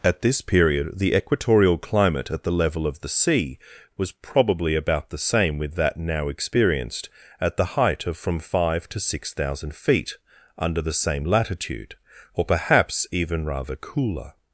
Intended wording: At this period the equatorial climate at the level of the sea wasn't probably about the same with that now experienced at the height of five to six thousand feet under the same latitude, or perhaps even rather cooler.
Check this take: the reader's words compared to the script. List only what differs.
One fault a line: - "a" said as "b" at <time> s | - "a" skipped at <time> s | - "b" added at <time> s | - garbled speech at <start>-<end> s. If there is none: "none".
- "wasn't" said as "was" at 4.0 s
- "from" added at 8.2 s